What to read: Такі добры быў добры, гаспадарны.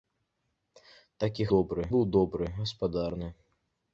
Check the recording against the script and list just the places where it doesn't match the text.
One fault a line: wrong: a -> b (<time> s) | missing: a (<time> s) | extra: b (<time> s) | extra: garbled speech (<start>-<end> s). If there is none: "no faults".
no faults